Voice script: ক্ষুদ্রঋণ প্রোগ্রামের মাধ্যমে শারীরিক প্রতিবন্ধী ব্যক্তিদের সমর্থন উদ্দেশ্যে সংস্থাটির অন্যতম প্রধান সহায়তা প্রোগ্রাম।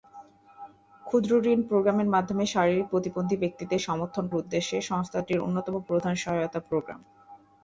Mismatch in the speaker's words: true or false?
false